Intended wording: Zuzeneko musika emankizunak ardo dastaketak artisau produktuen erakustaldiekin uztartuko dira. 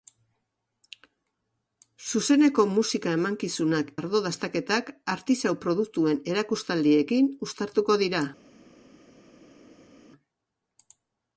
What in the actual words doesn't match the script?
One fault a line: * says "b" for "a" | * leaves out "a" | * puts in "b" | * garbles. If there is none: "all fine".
all fine